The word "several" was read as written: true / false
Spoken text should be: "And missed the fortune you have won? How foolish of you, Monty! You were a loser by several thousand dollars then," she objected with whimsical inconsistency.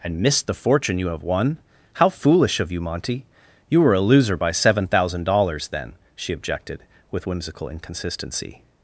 false